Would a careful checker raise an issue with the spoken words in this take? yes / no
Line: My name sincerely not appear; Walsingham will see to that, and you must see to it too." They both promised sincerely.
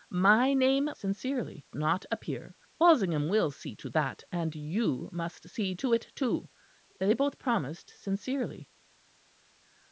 no